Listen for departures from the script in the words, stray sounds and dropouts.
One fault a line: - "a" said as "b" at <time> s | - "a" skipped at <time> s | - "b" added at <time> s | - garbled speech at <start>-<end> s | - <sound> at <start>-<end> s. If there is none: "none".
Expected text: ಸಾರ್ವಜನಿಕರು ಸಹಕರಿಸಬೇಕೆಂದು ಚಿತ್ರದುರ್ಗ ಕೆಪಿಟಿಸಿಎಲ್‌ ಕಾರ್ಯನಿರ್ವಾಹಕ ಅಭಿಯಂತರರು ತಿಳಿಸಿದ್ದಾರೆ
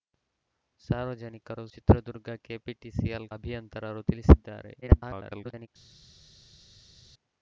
- "ಸಹಕರಿಸಬೇಕೆಂದು" skipped at 1.6 s
- "ಕಾರ್ಯನಿರ್ವಾಹಕ" skipped at 3.3 s
- garbled speech at 4.8-5.7 s